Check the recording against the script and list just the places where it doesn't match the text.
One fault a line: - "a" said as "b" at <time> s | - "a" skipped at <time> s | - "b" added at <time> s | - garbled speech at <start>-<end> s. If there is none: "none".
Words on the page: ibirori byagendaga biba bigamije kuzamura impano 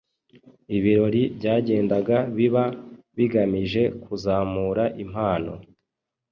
none